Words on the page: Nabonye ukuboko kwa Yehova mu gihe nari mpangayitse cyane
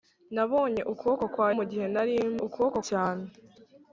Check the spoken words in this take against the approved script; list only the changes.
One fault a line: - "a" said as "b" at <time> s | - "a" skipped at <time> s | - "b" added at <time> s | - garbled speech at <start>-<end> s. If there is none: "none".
- "Yehova" skipped at 1.5 s
- "mpangayitse" said as "ukuboko" at 2.4 s